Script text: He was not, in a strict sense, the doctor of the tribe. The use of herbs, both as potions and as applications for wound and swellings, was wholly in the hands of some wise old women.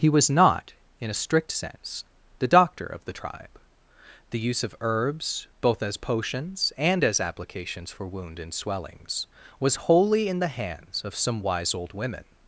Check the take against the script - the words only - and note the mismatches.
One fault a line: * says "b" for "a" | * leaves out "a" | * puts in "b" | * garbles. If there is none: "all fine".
all fine